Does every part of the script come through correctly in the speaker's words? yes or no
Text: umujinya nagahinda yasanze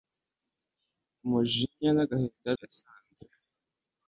yes